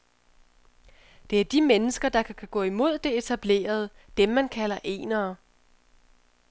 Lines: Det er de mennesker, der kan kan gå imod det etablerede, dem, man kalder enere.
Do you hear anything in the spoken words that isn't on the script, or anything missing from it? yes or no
no